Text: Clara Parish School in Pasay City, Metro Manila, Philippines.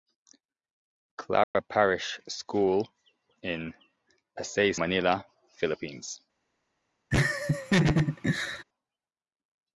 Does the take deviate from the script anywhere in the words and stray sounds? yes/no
yes